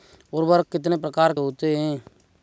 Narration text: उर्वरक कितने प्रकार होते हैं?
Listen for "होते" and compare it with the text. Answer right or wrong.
right